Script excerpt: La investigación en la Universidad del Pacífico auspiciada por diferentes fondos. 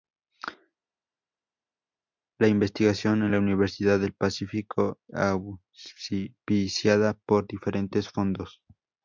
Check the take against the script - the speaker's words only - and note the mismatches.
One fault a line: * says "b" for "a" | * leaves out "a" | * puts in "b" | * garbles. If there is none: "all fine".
all fine